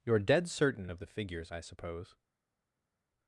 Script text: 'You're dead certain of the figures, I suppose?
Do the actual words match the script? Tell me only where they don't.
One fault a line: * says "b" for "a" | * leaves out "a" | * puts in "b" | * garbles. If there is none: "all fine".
all fine